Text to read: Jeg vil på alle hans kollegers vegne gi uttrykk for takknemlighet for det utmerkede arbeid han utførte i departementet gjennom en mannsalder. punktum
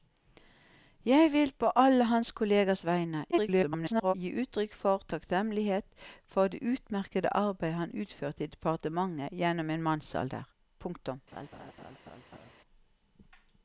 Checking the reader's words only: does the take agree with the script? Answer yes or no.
no